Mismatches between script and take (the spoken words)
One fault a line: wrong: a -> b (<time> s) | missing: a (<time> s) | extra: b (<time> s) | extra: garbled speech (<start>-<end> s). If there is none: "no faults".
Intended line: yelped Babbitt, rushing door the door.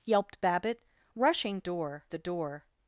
no faults